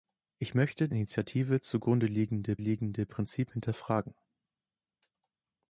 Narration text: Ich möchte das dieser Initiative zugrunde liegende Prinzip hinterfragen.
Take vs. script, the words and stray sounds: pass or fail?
fail